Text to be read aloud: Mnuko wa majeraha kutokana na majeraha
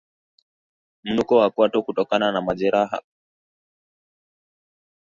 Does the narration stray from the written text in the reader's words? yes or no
yes